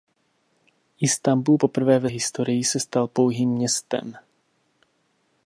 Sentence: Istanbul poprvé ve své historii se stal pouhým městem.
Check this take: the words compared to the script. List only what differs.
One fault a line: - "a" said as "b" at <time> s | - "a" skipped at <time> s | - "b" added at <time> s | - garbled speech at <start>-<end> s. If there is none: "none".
- "své" skipped at 2.1 s